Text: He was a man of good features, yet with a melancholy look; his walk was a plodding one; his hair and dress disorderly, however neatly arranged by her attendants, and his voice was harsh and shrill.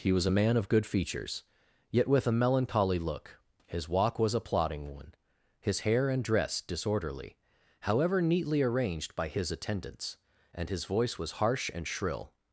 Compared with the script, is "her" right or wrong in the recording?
wrong